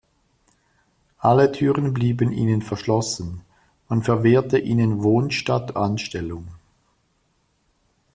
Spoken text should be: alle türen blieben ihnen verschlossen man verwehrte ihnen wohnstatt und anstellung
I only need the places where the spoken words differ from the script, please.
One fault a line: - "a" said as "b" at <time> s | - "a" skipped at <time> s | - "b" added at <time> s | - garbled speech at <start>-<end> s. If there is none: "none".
- "und" skipped at 5.7 s